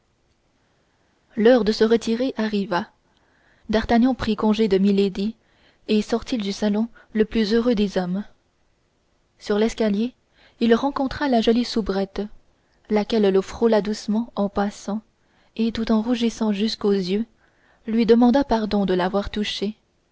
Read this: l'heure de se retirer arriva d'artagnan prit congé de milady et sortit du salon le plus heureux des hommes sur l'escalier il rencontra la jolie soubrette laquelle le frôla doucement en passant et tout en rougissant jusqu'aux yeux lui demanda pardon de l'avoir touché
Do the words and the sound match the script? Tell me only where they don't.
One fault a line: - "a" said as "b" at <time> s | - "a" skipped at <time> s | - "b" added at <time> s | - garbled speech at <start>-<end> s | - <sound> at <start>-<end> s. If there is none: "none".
none